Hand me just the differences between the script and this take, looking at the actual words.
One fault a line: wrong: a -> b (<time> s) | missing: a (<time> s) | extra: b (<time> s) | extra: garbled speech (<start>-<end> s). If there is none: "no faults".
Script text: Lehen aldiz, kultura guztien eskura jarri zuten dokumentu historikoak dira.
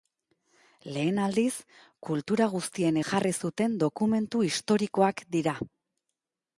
missing: eskura (3.0 s)